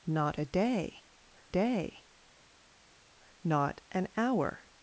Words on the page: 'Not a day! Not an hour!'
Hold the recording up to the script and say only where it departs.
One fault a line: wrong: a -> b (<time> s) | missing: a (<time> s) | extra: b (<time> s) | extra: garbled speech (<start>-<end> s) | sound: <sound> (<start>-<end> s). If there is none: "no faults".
extra: day (1.5 s)